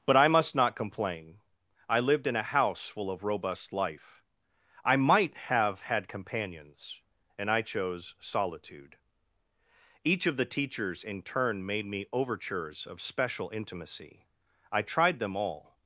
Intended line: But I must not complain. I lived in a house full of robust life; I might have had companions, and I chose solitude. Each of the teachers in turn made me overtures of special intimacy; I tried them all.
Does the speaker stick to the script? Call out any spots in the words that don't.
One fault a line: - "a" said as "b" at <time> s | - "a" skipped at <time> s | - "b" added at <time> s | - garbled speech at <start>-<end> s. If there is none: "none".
none